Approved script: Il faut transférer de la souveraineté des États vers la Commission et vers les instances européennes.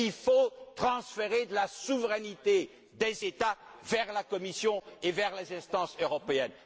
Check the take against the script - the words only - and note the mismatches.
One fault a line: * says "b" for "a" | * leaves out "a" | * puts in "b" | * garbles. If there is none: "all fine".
all fine